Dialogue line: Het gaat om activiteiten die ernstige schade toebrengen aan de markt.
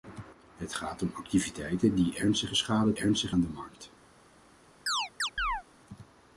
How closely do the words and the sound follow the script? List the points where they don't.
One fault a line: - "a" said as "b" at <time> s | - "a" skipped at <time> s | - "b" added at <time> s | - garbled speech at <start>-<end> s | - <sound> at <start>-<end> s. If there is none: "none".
- "toebrengen" said as "ernstige" at 3.0 s
- chirp at 4.9-5.6 s